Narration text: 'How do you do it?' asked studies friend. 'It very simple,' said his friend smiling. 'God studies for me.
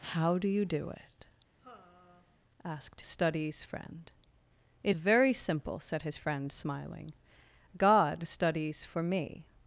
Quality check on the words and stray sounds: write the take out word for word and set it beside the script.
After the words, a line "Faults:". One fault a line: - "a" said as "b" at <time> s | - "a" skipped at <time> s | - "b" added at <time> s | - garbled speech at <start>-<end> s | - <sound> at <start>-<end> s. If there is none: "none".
'How do you do it?' asked studies friend. 'It very simple,' said his friend smiling. 'God studies for me.
Faults:
- sigh at 1.6-2.4 s